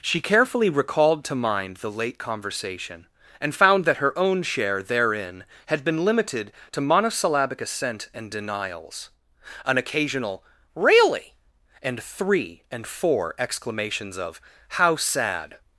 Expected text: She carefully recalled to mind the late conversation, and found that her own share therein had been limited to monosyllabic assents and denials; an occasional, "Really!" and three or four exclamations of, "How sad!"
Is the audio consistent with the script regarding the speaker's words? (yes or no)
no